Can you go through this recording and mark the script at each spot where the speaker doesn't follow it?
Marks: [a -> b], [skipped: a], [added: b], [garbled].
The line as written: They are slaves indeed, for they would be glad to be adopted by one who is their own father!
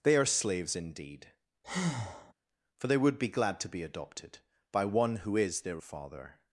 They are slaves indeed, for they would be glad to be adopted by one who is their [skipped: own] father!